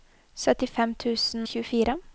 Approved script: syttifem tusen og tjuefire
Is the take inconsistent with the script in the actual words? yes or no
yes